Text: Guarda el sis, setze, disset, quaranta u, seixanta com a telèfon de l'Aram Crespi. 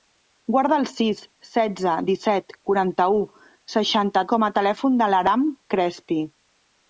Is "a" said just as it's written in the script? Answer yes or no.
yes